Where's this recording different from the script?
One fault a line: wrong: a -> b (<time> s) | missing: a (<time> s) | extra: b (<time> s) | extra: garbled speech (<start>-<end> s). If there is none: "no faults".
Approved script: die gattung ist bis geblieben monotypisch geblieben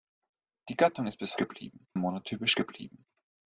no faults